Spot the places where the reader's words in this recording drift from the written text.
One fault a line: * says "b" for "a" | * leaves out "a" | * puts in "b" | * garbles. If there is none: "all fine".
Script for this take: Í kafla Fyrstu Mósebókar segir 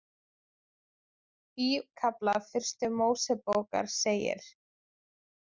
all fine